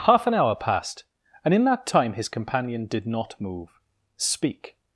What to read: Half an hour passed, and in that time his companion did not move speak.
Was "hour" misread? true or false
false